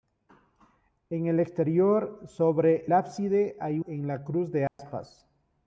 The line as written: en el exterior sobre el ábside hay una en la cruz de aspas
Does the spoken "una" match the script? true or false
false